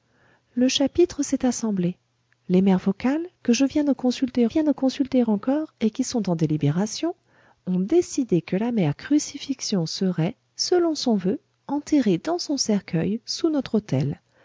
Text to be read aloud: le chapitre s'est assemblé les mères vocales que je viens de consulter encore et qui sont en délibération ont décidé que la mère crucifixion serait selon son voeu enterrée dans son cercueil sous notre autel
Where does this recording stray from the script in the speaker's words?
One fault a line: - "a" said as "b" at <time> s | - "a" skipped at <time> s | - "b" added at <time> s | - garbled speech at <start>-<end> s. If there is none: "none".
- "viens de consulter" added at 4.5 s